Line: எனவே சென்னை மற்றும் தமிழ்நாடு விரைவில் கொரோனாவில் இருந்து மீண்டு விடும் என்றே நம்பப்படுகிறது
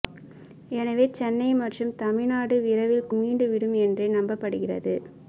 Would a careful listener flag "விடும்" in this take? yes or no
no